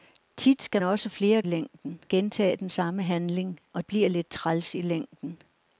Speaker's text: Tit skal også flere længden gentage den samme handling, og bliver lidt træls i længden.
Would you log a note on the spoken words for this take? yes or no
no